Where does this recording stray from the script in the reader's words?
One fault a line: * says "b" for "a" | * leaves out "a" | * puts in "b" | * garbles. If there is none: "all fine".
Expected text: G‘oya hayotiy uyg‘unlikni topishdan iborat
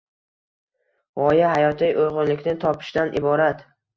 all fine